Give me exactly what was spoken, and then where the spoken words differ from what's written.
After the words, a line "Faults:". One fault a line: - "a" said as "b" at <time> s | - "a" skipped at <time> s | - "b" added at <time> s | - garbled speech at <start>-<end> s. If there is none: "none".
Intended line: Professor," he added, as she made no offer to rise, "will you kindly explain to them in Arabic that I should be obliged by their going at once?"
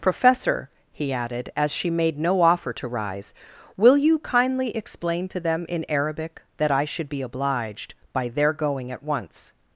Professor," he added, as she made no offer to rise, "will you kindly explain to them in Arabic that I should be obliged by their going at once?"
Faults:
none